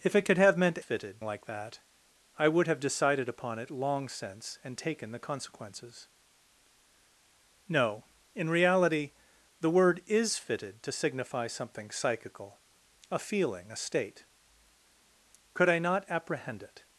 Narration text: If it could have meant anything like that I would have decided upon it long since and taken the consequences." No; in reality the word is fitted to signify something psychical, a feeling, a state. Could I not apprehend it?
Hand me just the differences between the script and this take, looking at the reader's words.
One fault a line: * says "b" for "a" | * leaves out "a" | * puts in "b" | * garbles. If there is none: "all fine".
* says "fitted" for "anything"